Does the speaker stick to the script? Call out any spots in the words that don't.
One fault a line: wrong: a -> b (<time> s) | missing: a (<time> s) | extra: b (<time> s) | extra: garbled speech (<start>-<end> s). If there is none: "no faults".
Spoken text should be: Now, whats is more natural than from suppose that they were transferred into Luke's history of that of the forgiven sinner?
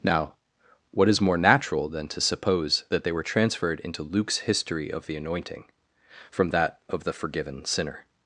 wrong: whats -> what (0.9 s)
wrong: from -> to (2.1 s)
extra: the anointing from (5.1 s)